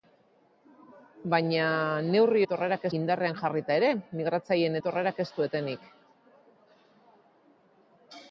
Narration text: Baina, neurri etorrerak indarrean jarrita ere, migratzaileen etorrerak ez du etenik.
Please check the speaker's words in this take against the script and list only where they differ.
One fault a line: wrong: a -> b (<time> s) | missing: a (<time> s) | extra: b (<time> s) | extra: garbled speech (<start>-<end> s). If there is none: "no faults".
no faults